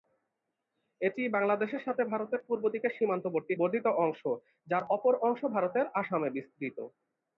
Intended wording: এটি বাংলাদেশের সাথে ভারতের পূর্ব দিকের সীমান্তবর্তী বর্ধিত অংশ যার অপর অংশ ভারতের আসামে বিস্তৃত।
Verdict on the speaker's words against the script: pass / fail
pass